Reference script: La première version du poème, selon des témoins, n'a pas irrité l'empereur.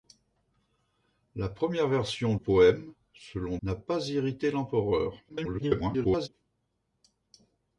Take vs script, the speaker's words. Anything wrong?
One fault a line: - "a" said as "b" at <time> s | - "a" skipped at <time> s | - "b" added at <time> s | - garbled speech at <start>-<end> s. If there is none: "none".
- "du" skipped at 2.4 s
- "des témoins" skipped at 3.6 s
- garbled speech at 5.3-6.3 s